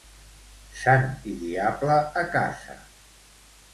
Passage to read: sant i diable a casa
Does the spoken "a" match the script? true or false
true